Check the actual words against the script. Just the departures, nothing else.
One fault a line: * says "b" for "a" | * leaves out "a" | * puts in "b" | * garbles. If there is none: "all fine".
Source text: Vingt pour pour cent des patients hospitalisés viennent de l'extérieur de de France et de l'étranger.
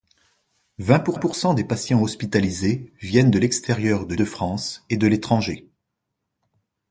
all fine